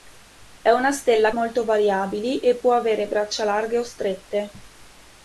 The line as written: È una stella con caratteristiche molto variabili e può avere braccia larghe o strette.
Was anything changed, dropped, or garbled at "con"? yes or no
yes